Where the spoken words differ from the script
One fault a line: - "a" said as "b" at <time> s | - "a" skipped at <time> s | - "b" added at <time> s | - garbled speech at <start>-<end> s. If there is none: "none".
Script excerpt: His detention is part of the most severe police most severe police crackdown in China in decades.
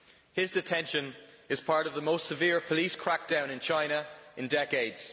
- "most severe police" skipped at 3.0 s